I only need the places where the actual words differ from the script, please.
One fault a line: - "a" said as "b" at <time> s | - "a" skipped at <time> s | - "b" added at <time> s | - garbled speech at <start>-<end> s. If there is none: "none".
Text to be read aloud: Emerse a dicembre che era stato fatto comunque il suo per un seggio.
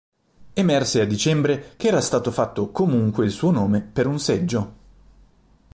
- "nome" added at 3.5 s